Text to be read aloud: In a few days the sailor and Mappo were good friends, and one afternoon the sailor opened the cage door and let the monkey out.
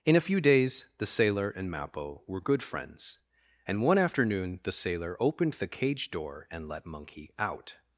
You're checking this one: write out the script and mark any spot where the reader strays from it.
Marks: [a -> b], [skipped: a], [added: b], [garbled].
In a few days the sailor and Mappo were good friends, and one afternoon the sailor opened the cage door and let [skipped: the] monkey out.